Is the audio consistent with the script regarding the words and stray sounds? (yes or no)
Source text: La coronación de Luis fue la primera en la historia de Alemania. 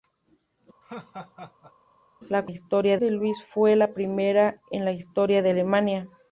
no